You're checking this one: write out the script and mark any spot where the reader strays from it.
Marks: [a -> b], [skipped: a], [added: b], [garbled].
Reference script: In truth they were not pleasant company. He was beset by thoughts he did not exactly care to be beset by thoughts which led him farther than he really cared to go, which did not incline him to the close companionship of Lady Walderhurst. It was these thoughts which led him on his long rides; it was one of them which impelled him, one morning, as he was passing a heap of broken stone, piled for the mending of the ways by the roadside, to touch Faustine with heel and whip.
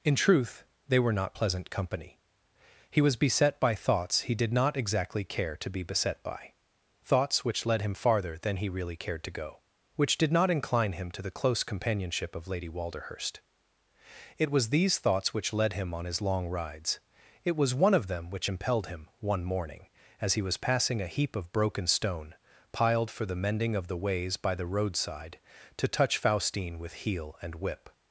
In truth they were not pleasant company. He was beset by thoughts he did not exactly care to be beset by thoughts which led him farther than he really cared to go, which did not incline him to the close companionship of Lady Walderhurst. It was these thoughts which led him on his long rides; it was one of them which impelled him, one morning, as he was passing a heap of broken stone, piled for the mending of the ways by the roadside, to touch Faustine with heel and whip.